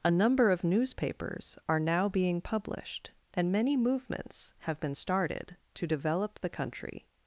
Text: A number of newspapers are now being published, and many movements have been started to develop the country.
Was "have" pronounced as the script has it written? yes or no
yes